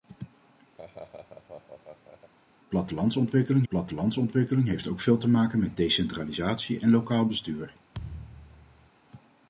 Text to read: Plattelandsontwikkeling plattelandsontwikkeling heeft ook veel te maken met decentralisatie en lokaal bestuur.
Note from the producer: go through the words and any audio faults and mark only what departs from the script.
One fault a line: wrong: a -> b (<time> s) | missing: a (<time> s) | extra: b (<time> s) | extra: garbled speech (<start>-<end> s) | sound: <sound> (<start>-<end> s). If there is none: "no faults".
sound: laugh (0.8-2.3 s)
sound: thud (7.9-8.9 s)